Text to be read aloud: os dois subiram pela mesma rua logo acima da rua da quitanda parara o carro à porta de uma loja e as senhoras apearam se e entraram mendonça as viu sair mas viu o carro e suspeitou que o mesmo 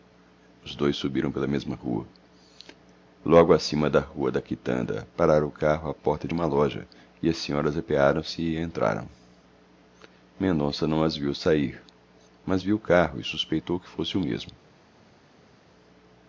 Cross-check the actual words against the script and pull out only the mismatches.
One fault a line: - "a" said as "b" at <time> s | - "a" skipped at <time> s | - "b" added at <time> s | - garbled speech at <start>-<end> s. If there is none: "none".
- "não" added at 10.9 s
- "fosse" added at 13.9 s